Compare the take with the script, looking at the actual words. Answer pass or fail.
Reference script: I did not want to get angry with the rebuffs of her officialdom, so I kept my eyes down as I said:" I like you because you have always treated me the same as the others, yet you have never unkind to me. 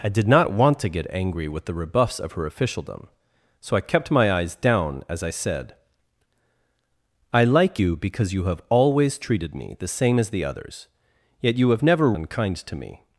pass